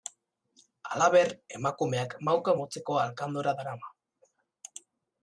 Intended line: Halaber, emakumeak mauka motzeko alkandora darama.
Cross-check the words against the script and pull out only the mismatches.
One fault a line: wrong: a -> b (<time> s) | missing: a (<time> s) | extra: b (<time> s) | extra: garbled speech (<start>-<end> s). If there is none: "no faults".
no faults